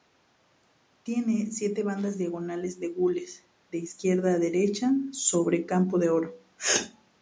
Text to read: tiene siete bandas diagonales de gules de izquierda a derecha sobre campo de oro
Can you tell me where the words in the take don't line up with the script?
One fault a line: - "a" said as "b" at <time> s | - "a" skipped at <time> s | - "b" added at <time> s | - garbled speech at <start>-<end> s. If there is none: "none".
none